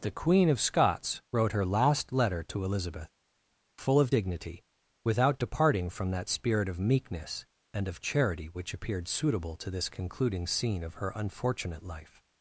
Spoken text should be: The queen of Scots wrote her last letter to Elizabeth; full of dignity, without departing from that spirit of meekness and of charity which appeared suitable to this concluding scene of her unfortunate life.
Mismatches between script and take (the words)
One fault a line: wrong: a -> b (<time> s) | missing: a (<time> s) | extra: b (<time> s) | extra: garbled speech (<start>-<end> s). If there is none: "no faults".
no faults